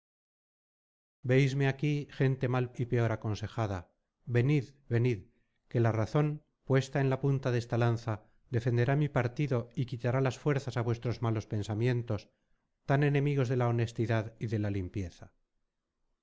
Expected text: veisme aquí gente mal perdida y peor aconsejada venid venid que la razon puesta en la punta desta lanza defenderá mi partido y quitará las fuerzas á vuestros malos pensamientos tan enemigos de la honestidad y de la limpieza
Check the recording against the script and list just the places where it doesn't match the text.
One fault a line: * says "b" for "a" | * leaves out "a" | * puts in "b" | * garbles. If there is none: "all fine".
* leaves out "perdida"